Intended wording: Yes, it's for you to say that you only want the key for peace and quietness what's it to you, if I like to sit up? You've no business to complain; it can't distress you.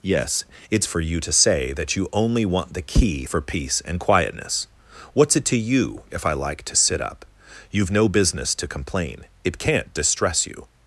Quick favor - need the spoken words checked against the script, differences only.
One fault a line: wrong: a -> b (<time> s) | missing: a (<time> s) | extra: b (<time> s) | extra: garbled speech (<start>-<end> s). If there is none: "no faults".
no faults